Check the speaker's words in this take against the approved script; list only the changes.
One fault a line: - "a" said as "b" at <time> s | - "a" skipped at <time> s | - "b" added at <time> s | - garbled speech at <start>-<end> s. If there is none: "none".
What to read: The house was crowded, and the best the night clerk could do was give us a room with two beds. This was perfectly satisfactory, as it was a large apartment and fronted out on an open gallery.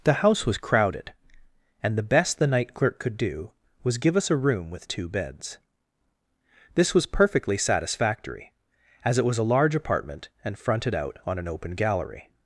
none